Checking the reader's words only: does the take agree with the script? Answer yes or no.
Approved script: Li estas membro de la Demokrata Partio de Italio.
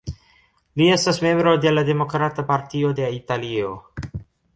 yes